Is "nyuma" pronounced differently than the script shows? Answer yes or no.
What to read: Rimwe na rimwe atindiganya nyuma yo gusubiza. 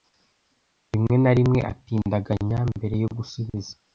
yes